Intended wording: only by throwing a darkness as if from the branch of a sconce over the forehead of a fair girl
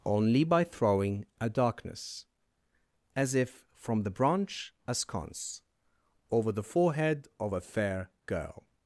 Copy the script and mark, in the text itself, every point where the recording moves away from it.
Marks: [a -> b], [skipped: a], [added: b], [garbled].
only by throwing a darkness as if from the branch [skipped: of] a sconce over the forehead of a fair girl